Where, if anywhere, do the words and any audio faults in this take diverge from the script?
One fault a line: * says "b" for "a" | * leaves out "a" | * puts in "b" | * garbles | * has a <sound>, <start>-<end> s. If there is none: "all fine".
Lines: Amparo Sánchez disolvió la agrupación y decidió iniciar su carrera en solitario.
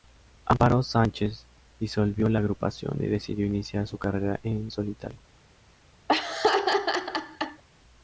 * has a laugh, 6.1-7.6 s